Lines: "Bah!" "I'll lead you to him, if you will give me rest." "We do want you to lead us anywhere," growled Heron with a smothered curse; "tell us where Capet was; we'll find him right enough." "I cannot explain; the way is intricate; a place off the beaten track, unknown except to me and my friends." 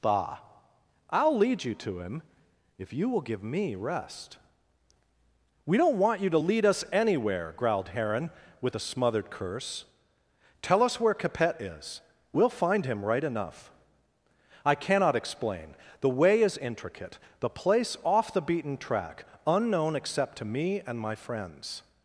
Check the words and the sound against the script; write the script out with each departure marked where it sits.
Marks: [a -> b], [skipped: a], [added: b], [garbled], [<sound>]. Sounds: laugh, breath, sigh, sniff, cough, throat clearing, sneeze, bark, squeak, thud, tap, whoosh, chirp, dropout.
"Bah!" "I'll lead you to him, if you will give me rest." "We [do -> don't] want you to lead us anywhere," growled Heron with a smothered curse; "tell us where Capet [was; -> is] we'll find him right enough." "I cannot explain; the way is intricate; [a -> the] place off the beaten track, unknown except to me and my friends."